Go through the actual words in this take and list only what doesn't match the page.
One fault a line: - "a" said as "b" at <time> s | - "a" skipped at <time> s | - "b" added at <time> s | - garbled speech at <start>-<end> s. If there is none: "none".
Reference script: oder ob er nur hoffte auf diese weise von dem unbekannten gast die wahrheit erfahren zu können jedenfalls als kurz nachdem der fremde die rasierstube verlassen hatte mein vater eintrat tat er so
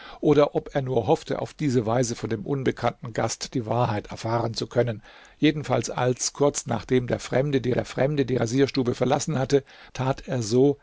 - "der fremde die" added at 7.7 s
- "mein vater eintrat" skipped at 9.6 s